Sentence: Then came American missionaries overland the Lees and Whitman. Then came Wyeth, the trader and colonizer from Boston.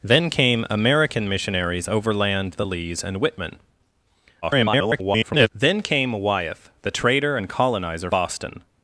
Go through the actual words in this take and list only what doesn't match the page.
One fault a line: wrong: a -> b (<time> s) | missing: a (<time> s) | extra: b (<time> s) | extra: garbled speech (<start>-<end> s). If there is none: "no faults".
extra: garbled speech (4.4-5.5 s)
missing: from (8.1 s)